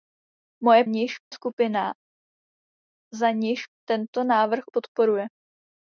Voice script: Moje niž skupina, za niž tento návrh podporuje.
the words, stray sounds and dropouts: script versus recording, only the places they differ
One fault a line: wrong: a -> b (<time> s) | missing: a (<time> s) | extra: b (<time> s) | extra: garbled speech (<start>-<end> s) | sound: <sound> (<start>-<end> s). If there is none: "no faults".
no faults